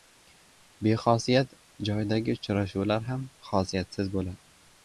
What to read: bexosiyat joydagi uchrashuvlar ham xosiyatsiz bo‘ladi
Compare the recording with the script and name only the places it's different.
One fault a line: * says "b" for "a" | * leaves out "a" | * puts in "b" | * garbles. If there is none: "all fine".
all fine